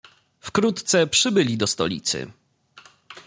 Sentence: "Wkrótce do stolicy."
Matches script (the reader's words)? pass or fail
fail